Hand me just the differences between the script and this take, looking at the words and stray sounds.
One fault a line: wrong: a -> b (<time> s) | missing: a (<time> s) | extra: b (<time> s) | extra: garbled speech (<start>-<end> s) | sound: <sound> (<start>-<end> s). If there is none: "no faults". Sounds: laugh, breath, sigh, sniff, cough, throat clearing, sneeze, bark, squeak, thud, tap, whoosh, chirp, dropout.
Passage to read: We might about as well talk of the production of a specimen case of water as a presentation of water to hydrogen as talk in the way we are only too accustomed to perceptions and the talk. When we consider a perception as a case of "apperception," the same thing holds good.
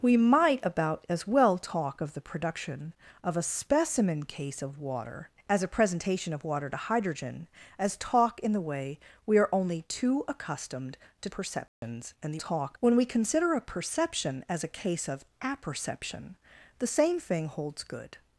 sound: dropout (11.7-11.8 s)